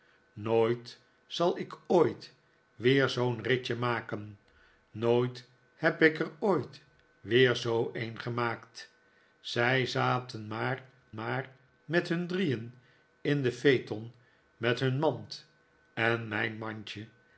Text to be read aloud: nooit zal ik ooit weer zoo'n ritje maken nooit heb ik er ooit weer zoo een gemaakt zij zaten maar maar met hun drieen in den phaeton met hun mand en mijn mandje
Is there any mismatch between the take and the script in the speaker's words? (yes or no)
no